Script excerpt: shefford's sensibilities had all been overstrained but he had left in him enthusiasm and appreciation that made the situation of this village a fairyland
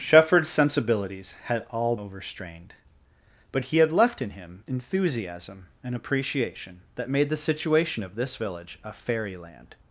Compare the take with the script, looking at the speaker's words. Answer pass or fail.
fail